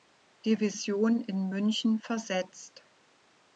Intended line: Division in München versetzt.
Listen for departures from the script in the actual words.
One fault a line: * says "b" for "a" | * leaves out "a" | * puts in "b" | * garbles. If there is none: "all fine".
all fine